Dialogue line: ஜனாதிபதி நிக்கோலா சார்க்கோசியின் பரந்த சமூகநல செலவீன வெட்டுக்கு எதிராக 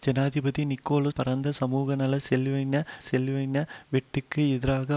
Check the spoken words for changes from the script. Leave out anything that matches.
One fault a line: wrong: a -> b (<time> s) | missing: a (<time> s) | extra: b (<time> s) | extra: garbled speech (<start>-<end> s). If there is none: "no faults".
missing: சார்க்கோசியின் (1.1 s)
extra: செலவீன (3.0 s)